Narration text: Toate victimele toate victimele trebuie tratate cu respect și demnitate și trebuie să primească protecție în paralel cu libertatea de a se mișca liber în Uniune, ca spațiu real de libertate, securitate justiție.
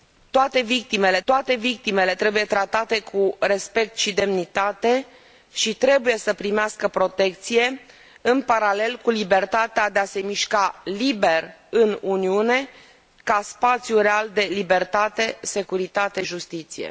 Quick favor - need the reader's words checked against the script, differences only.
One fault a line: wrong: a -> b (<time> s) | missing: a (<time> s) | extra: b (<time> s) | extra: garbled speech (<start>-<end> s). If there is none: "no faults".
no faults